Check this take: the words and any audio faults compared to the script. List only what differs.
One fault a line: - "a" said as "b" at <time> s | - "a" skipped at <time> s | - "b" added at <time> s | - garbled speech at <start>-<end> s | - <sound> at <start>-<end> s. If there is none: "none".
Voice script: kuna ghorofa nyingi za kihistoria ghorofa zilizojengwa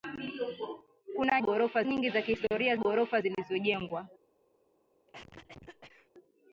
- cough at 5.1-6.1 s